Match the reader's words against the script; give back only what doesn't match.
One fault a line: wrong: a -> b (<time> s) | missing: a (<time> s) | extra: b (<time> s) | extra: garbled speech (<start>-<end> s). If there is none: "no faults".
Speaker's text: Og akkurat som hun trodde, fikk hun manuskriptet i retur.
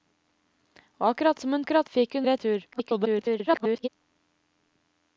wrong: trodde -> akkurat (1.6 s)
missing: manuskriptet (2.3 s)
extra: garbled speech (2.7-3.9 s)